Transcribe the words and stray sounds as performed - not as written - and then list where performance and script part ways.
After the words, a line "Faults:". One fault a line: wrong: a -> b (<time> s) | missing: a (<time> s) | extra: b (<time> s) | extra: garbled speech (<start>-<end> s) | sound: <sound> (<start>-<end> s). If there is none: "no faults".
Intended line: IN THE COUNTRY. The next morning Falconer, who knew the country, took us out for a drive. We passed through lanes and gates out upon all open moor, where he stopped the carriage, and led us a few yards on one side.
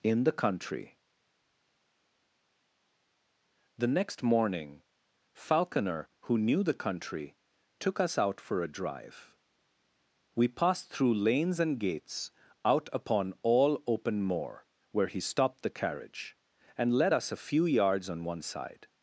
IN THE COUNTRY. The next morning Falconer, who knew the country, took us out for a drive. We passed through lanes and gates out upon all open moor, where he stopped the carriage, and led us a few yards on one side.
Faults:
no faults